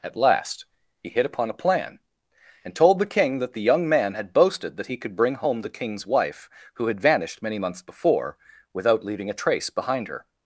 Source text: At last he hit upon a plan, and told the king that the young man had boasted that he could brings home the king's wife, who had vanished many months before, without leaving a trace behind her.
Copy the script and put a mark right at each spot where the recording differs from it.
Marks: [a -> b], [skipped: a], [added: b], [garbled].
At last he hit upon a plan, and told the king that the young man had boasted that he could [brings -> bring] home the king's wife, who had vanished many months before, without leaving a trace behind her.